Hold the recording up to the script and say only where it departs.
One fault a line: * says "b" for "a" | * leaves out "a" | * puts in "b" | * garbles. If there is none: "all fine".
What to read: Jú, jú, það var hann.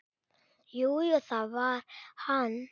all fine